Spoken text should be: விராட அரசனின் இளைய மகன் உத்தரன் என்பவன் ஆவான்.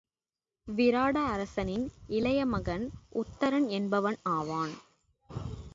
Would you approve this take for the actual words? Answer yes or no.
yes